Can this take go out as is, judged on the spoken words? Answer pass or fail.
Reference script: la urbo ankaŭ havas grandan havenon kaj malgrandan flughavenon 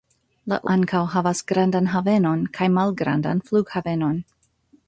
fail